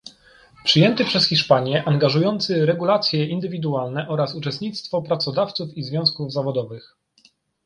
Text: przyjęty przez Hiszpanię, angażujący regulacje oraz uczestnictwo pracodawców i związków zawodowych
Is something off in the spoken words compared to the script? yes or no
yes